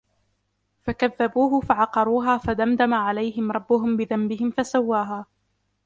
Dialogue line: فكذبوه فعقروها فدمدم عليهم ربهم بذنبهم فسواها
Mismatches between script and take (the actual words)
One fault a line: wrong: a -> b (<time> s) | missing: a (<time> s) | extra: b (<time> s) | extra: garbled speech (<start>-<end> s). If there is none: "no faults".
no faults